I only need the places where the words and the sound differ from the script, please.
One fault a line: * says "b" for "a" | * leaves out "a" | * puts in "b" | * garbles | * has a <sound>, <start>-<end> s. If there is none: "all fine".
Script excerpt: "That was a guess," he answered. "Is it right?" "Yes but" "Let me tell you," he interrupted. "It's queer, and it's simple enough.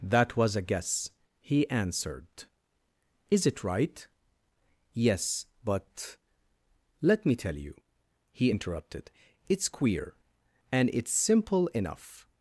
all fine